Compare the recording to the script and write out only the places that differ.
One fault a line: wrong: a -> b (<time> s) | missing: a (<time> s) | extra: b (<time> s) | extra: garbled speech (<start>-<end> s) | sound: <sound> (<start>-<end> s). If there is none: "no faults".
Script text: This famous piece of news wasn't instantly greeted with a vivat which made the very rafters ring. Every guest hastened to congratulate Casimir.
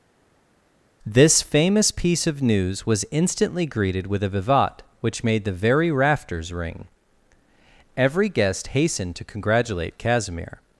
wrong: wasn't -> was (2.8 s)